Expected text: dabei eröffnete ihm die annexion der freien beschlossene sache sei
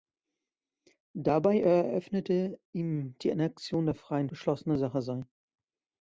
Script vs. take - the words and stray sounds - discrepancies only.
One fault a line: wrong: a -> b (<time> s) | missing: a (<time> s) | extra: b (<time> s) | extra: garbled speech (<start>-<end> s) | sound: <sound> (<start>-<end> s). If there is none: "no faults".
no faults